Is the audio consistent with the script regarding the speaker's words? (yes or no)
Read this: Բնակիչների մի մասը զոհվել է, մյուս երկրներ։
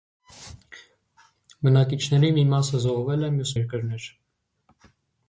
yes